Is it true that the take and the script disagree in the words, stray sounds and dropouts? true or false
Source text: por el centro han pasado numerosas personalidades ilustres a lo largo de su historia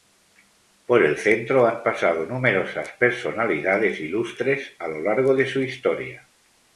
false